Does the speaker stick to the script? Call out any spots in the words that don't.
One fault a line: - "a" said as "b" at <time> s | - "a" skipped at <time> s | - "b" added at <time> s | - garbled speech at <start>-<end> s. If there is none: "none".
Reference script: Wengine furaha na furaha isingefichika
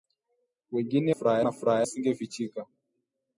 none